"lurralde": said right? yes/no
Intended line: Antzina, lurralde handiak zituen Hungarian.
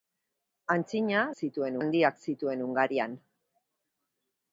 no